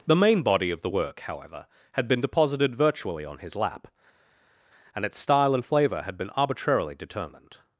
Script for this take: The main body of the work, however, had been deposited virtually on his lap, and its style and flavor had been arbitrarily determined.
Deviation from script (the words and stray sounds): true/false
false